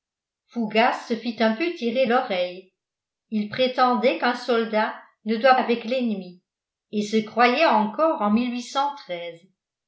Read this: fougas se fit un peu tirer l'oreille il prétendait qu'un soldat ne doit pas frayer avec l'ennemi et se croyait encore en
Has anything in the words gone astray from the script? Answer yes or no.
yes